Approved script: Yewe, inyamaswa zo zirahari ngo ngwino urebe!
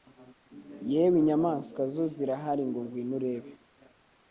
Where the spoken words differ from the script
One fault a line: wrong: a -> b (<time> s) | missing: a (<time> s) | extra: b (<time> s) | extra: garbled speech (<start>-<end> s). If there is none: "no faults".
no faults